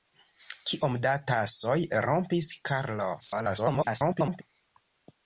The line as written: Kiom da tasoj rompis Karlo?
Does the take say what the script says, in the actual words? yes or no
no